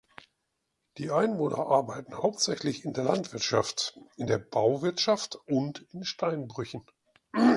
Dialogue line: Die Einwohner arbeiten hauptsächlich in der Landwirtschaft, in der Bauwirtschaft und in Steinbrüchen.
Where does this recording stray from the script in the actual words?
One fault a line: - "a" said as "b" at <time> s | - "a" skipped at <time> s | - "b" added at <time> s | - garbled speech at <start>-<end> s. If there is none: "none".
none